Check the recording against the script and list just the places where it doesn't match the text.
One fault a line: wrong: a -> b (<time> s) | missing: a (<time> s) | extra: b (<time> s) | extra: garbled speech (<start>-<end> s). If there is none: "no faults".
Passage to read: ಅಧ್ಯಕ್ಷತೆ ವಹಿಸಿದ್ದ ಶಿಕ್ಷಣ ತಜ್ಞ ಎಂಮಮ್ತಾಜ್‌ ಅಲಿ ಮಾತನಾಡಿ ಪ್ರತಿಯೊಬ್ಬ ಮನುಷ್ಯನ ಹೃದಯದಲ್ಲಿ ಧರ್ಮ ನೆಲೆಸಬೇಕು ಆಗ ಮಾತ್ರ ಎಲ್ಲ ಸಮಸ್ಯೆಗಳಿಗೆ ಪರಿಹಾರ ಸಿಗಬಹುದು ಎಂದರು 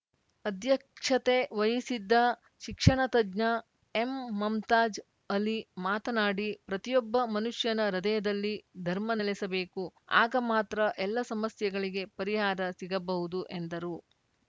no faults